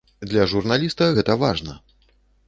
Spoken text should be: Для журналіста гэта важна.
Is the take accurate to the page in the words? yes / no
yes